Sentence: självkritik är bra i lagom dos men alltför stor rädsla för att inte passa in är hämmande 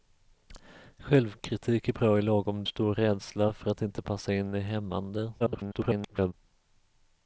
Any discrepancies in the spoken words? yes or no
yes